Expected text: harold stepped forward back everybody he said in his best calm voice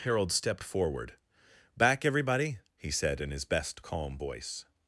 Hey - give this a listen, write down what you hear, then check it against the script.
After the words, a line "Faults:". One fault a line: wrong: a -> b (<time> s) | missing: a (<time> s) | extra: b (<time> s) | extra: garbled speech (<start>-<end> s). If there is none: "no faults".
harold stepped forward back everybody he said in his best calm voice
Faults:
no faults